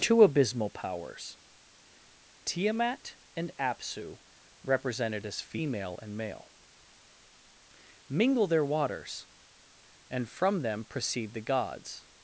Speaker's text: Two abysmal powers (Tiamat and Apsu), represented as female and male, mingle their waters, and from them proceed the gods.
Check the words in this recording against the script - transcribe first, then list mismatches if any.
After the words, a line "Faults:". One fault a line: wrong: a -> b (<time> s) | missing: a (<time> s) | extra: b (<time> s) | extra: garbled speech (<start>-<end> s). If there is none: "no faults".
Two abysmal powers (Tiamat and Apsu), represented as female and male, mingle their waters, and from them proceed the gods.
Faults:
no faults